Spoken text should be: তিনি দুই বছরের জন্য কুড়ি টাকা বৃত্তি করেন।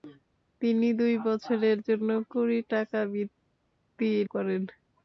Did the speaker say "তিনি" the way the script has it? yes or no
yes